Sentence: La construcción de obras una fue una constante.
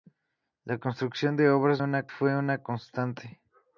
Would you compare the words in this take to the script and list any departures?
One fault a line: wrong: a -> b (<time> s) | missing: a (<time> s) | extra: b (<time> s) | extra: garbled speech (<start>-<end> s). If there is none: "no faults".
no faults